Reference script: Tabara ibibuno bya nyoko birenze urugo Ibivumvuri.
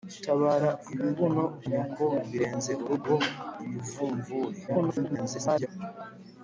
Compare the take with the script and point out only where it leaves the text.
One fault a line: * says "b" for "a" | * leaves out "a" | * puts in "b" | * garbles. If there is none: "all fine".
* leaves out "bya"
* garbles